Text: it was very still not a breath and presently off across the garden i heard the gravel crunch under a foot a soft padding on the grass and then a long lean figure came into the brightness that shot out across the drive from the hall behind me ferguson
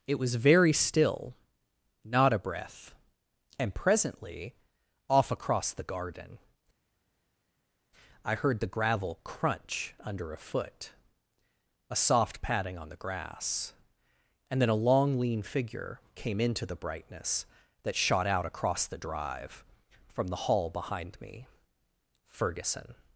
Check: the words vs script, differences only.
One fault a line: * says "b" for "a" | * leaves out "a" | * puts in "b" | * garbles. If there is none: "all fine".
all fine